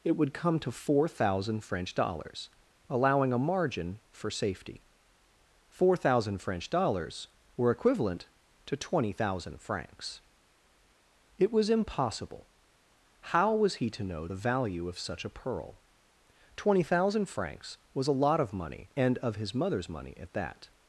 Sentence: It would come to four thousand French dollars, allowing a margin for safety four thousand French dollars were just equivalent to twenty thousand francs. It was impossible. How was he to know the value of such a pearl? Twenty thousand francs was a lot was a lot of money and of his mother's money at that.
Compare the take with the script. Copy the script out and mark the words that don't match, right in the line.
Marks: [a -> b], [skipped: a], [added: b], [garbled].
It would come to four thousand French dollars, allowing a margin for safety four thousand French dollars were [skipped: just] equivalent to twenty thousand francs. It was impossible. How was he to know the value of such a pearl? Twenty thousand francs was a lot [skipped: was a lot] of money and of his mother's money at that.